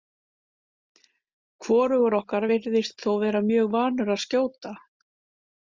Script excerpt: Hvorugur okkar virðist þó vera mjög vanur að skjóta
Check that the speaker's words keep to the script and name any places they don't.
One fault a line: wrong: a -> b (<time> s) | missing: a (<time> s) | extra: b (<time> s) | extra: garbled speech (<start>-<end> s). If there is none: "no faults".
no faults